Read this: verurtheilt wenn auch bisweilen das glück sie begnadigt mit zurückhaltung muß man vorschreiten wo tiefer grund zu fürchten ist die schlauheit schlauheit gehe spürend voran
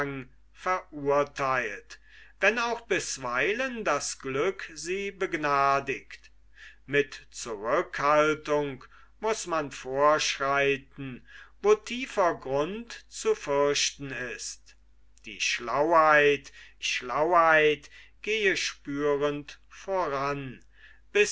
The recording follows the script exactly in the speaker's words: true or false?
true